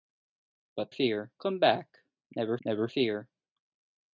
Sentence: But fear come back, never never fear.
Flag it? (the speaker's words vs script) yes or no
no